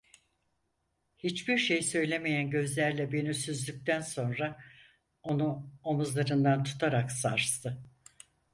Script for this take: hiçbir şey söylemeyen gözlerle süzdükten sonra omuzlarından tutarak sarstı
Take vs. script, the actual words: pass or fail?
fail